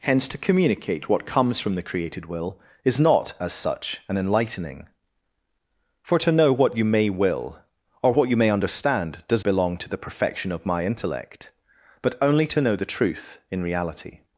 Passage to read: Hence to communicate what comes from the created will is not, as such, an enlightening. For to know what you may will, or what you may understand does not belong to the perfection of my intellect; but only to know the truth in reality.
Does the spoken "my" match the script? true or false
true